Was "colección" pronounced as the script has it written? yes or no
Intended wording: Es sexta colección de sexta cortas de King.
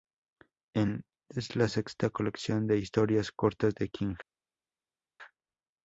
yes